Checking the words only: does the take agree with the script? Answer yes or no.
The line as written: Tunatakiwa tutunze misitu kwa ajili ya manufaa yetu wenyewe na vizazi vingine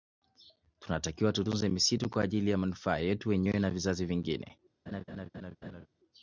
yes